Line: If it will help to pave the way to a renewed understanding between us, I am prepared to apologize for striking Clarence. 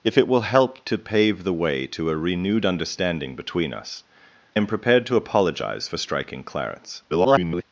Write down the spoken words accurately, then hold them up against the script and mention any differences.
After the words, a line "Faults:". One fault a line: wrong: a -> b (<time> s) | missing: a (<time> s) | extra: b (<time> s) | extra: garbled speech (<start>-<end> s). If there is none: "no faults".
If it will help to pave the way to a renewed understanding between us, am prepared to apologize for striking Clarence. [garbled]
Faults:
missing: I (4.0 s)
extra: garbled speech (7.1-7.6 s)